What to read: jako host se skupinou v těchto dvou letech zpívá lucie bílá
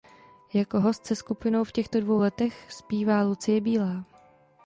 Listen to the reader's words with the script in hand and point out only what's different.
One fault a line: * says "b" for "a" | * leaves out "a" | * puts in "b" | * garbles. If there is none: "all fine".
all fine